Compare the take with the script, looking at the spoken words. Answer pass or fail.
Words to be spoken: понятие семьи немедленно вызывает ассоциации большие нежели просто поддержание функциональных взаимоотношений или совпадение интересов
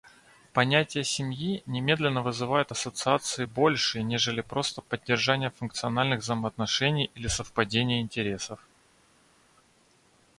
pass